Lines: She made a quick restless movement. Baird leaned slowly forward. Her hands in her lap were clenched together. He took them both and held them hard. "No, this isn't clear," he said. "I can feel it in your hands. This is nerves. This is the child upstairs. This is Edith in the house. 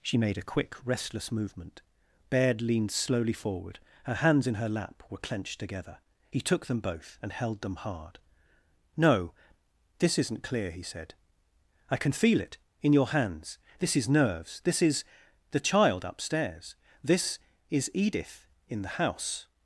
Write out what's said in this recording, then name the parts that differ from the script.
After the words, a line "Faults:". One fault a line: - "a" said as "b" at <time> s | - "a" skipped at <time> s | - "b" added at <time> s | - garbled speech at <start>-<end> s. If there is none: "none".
She made a quick restless movement. Baird leaned slowly forward. Her hands in her lap were clenched together. He took them both and held them hard. "No, this isn't clear," he said. "I can feel it in your hands. This is nerves. This is the child upstairs. This is Edith in the house.
Faults:
none